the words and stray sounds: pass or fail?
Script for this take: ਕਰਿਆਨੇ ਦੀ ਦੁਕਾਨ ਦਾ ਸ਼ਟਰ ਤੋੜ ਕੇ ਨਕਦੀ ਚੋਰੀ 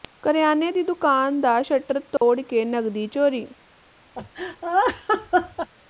fail